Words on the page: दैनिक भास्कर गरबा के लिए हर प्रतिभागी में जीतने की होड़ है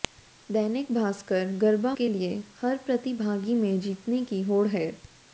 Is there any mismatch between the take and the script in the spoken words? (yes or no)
no